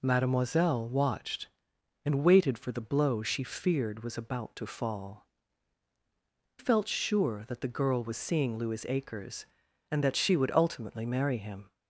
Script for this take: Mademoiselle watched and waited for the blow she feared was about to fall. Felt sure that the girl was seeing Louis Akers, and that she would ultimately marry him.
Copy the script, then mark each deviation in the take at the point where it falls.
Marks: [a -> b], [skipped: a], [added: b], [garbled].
Mademoiselle watched and waited for the blow she feared was about to fall. Felt sure that the girl was seeing Louis Akers, and that she would ultimately marry him.